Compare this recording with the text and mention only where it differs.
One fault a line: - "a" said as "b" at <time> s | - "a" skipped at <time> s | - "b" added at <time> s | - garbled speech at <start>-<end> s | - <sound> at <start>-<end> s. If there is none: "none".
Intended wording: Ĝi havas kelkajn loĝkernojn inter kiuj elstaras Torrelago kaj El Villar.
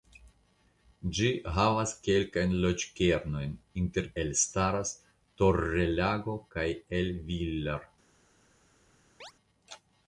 - "kiuj" skipped at 4.1 s
- chirp at 9.2-9.3 s